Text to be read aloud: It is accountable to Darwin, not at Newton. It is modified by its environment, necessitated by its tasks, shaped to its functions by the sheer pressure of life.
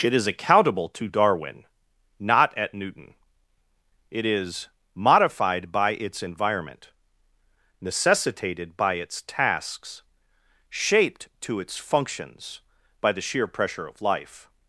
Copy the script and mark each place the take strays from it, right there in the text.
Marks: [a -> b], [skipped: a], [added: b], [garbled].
It is accountable to Darwin, not at Newton. It is modified by its environment, necessitated by its tasks, shaped to its functions by the sheer pressure of life.